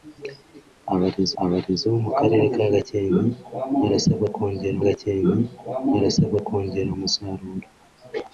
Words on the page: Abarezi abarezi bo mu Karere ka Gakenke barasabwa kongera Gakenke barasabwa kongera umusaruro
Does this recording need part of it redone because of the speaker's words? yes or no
no